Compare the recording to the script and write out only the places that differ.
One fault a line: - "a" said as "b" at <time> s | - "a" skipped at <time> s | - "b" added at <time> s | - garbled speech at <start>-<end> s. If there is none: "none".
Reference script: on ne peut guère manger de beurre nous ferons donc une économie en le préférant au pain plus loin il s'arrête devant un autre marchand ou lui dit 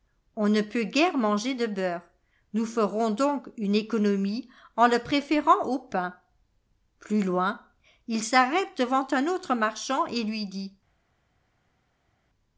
- "ou" said as "et" at 10.1 s